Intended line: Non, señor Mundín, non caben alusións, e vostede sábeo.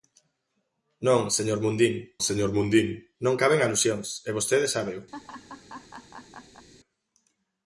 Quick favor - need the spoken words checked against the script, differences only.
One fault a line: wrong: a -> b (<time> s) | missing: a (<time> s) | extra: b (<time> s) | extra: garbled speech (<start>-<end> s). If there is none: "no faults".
extra: señor Mundín (2.3 s)